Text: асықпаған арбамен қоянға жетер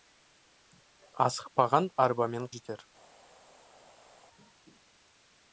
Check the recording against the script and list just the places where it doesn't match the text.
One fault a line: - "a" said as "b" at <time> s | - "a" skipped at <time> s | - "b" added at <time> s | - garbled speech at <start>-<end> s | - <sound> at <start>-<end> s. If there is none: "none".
- "қоянға" skipped at 2.5 s